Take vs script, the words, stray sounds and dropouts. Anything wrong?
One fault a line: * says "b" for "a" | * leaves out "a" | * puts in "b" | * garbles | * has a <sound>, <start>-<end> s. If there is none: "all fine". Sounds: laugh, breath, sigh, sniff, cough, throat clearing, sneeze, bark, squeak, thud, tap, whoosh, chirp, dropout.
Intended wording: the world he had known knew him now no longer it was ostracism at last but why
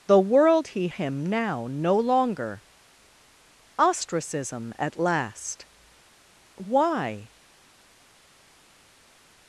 * leaves out "had known knew"
* leaves out "it was"
* leaves out "but"